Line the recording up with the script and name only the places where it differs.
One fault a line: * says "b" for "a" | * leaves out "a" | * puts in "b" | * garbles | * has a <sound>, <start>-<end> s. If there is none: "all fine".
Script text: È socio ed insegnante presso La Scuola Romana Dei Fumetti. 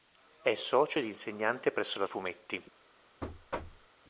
* leaves out "Scuola Romana Dei"
* has a thud, 3.2-3.9 s